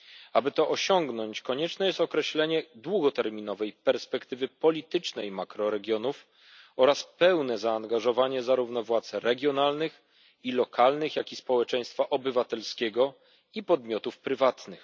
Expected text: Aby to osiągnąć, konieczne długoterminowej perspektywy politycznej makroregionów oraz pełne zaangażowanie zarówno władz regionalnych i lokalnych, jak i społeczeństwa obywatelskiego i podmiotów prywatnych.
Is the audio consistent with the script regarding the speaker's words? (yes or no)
no